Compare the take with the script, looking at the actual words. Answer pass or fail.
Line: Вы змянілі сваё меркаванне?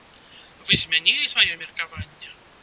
pass